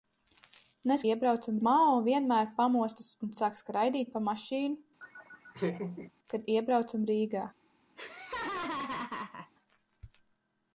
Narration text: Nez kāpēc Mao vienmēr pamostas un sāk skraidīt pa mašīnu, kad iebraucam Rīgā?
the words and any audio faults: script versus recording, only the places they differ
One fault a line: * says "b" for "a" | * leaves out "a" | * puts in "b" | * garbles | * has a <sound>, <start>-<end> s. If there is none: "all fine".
* says "iebraucam" for "kāpēc"
* has a laugh, 5.0-6.1 s
* has a laugh, 8.0-9.5 s